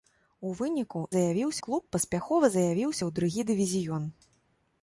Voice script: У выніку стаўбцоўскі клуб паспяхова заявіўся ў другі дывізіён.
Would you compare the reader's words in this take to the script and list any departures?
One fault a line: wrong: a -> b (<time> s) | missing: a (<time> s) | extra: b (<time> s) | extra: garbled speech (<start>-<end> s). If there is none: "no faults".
wrong: стаўбцоўскі -> заявіўся (1.2 s)